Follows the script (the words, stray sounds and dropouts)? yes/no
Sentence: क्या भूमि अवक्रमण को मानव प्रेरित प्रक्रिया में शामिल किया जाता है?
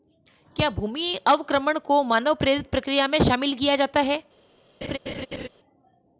no